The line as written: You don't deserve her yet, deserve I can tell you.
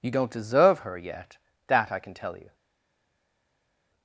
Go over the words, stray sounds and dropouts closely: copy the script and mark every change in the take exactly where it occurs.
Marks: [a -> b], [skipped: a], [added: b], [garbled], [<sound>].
You don't deserve her yet, [deserve -> that] I can tell you.